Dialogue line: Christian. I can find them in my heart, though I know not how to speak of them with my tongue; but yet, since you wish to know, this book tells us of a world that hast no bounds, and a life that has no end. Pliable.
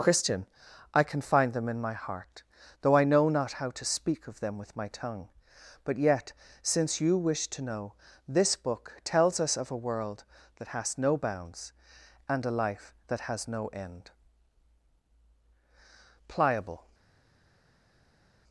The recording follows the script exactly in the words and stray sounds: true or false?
false